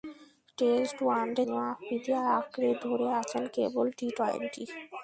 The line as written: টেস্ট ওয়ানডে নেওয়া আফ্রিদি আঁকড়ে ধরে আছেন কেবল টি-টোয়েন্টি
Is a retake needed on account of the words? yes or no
no